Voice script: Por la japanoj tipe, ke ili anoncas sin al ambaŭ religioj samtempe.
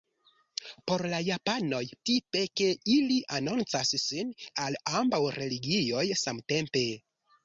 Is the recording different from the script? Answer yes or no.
no